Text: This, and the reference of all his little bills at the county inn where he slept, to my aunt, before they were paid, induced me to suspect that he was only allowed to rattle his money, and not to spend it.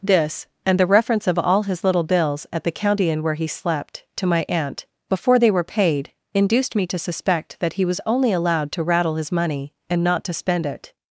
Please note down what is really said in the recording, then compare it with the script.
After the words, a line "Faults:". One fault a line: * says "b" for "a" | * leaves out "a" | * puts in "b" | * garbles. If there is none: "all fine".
This, and the reference of all his little bills at the county inn where he slept, to my aunt, before they were paid, induced me to suspect that he was only allowed to rattle his money, and not to spend it.
Faults:
all fine